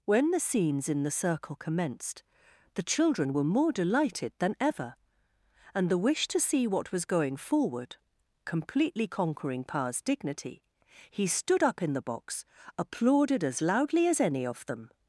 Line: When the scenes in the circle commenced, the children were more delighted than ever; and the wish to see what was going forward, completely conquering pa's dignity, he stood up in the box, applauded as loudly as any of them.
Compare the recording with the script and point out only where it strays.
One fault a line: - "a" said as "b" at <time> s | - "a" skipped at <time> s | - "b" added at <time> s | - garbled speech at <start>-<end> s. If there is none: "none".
none